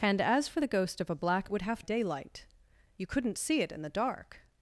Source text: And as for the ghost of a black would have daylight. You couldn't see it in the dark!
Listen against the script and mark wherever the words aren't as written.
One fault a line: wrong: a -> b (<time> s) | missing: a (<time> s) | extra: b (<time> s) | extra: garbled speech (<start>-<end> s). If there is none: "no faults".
no faults